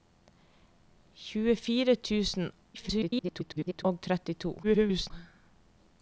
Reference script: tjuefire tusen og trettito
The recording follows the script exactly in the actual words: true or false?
false